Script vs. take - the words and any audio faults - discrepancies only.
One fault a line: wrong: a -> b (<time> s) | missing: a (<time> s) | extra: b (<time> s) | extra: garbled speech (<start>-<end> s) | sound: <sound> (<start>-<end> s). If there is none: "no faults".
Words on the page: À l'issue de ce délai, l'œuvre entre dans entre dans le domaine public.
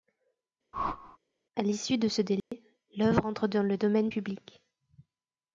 sound: whoosh (0.7-1.2 s)
sound: dropout (2.4-2.5 s)
missing: entre dans (3.6 s)